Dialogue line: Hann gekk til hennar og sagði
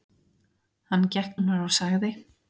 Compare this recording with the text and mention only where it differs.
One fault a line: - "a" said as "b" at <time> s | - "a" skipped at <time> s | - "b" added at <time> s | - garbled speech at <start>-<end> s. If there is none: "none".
- "til" skipped at 1.4 s